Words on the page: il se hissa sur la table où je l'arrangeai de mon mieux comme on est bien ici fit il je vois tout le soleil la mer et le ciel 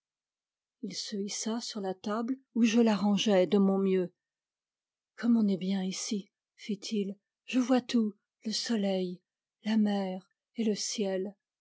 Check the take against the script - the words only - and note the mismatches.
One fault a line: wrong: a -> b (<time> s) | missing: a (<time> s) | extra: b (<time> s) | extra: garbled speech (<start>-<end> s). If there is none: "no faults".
no faults